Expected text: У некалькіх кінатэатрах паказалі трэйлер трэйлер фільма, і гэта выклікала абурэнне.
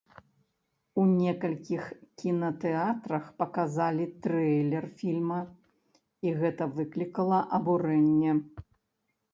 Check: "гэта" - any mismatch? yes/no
no